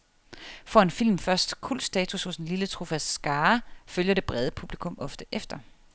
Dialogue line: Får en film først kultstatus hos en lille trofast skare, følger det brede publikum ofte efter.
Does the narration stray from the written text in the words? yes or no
no